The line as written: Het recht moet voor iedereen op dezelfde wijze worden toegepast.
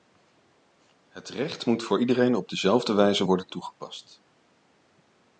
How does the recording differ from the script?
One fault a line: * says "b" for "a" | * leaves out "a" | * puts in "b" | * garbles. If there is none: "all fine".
all fine